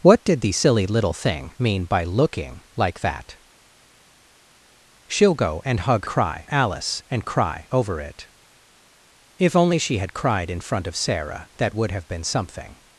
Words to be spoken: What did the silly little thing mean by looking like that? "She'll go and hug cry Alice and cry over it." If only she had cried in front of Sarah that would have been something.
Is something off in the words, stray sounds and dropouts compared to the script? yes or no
no